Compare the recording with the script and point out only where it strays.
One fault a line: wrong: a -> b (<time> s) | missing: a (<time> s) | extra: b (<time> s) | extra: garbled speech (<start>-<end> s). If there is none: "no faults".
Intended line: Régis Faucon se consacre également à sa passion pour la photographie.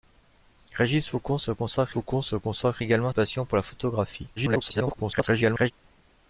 extra: Faucon se consacre (1.9 s)
missing: sa (3.1 s)
extra: garbled speech (4.4-5.7 s)